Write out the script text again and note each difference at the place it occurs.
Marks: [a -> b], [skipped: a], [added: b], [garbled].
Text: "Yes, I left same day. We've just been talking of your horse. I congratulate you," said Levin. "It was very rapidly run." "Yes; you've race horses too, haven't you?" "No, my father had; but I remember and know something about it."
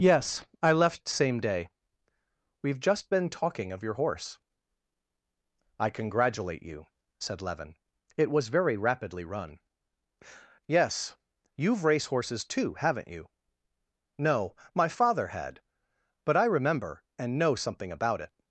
"Yes, I left same day. We've just been talking of your horse. I congratulate you," said Levin. "It was very rapidly run." "Yes; you've race horses too, haven't you?" "No, my father had; but I remember and know something about it."